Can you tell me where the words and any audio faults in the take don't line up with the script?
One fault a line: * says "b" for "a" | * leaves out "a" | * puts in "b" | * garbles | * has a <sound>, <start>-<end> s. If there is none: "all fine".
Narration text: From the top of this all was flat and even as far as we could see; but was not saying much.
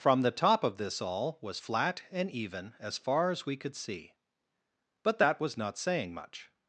* puts in "that"